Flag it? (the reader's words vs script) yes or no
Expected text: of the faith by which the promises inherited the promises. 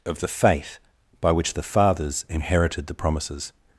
yes